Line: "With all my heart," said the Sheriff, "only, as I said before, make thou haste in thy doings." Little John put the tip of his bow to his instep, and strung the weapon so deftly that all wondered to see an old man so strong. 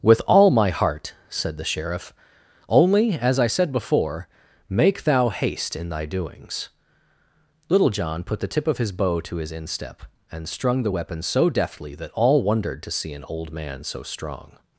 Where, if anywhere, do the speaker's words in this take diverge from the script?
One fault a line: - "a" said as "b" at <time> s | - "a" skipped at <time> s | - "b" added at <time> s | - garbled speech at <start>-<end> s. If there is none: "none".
none